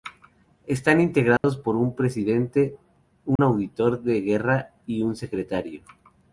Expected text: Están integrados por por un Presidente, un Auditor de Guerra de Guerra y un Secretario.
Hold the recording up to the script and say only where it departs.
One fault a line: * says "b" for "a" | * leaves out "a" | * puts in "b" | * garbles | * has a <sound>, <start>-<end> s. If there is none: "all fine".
* has a dropout, 1.4-1.4 s
* leaves out "por"
* has a dropout, 3.4-3.4 s
* leaves out "de Guerra"